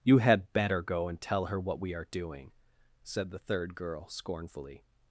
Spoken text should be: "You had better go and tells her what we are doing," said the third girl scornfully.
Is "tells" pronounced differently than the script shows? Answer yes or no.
yes